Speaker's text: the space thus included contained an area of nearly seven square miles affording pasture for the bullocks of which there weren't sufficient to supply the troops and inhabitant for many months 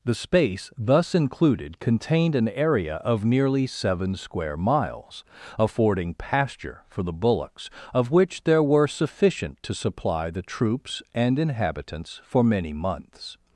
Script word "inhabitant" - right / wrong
wrong